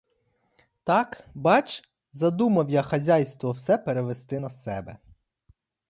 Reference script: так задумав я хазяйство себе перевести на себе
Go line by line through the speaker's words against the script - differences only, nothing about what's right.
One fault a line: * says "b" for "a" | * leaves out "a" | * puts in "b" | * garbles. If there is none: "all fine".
* puts in "бач"
* says "все" for "себе"